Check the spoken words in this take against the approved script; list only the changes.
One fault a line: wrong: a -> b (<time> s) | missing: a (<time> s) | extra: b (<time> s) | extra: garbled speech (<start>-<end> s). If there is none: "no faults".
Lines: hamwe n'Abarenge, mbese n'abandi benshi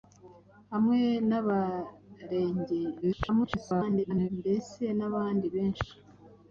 extra: garbled speech (3.0-4.3 s)